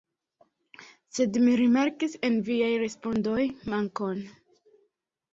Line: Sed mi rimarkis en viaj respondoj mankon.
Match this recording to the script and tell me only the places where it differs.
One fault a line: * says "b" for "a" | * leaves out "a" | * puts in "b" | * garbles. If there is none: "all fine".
all fine